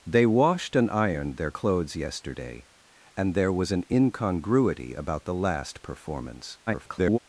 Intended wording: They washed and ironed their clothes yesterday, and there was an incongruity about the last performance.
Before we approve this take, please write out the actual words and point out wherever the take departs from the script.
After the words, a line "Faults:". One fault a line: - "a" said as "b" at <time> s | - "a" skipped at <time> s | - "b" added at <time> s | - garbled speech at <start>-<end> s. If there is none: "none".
They washed and ironed their clothes yesterday, and there was an incongruity about the last performance. [garbled]
Faults:
- garbled speech at 6.7-7.2 s